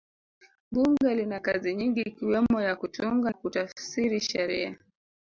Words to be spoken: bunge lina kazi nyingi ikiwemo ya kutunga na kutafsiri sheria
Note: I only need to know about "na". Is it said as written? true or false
false